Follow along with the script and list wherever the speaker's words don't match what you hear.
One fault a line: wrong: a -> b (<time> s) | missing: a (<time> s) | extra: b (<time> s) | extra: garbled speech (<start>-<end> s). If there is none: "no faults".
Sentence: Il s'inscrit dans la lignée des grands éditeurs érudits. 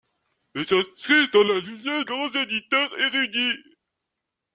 missing: des (2.0 s)